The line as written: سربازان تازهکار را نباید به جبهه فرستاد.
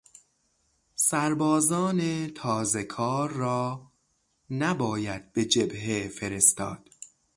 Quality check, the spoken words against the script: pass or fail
pass